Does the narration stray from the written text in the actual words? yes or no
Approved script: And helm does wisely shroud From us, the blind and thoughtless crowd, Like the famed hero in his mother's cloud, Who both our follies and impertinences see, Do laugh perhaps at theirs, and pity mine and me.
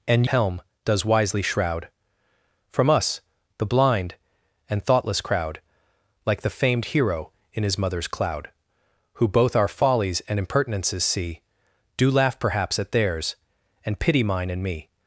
no